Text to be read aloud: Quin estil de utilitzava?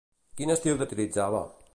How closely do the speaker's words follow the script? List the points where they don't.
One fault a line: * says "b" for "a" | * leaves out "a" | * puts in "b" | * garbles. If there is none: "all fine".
all fine